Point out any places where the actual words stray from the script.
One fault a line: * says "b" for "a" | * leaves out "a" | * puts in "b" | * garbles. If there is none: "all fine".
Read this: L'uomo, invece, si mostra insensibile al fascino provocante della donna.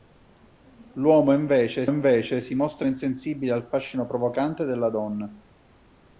* puts in "invece"